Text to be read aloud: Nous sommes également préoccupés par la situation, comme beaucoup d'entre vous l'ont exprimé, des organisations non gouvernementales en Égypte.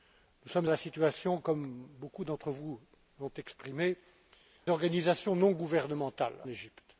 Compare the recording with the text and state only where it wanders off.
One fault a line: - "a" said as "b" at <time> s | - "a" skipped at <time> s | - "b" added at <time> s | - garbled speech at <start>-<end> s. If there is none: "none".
- "également préoccupés par" skipped at 0.7 s
- "des" skipped at 4.0 s
- "en" skipped at 6.3 s